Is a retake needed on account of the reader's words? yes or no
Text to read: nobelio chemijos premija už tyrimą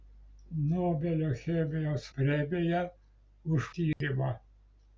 no